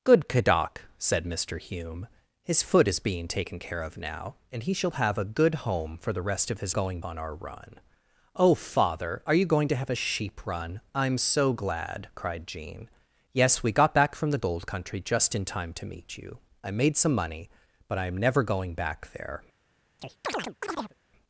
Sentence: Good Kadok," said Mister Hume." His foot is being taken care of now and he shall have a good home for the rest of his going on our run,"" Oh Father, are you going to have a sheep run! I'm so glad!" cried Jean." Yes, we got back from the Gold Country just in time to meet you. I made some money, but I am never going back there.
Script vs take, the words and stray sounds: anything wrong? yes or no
yes